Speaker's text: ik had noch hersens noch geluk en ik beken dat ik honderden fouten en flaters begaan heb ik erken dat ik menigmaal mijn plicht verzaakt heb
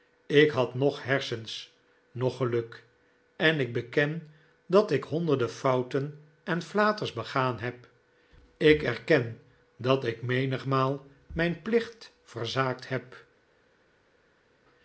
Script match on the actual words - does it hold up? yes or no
yes